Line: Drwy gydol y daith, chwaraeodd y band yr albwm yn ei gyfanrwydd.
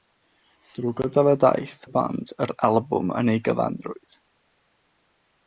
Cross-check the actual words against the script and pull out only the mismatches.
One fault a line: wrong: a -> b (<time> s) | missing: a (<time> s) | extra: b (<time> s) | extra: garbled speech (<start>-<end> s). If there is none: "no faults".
missing: chwaraeodd (1.7 s)